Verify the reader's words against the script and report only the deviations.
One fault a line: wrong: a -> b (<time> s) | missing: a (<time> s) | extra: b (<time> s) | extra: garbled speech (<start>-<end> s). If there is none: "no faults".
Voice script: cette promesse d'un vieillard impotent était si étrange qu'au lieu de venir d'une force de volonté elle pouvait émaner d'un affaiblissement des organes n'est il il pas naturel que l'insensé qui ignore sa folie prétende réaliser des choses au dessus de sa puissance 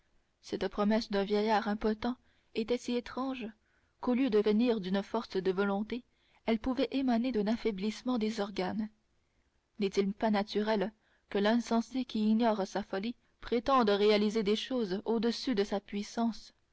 missing: il (10.1 s)